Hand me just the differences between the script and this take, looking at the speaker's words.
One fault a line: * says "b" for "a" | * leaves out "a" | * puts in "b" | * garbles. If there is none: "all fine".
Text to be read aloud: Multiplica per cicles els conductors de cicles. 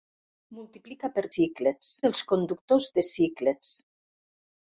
all fine